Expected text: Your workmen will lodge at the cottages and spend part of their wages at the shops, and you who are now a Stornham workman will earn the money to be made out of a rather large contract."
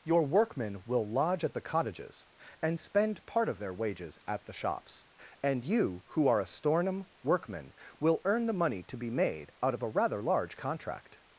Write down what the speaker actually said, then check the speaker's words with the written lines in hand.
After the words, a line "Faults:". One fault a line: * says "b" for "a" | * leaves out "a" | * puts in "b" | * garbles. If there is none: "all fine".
Your workmen will lodge at the cottages and spend part of their wages at the shops, and you who are a Stornham workman will earn the money to be made out of a rather large contract."
Faults:
* leaves out "now"